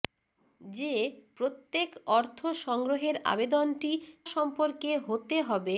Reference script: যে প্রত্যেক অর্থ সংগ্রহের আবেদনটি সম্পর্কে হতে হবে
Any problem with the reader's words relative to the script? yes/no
no